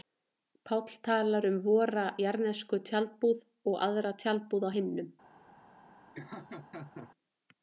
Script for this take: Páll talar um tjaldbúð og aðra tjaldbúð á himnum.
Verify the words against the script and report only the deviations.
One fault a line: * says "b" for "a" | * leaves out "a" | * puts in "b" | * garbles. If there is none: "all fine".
* puts in "vora jarðnesku"